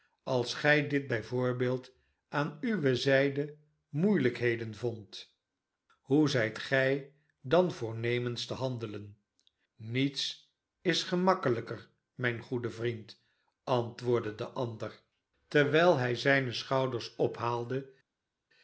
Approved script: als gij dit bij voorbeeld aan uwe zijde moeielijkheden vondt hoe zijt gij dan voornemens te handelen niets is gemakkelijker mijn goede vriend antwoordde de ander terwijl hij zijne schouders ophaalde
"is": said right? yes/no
yes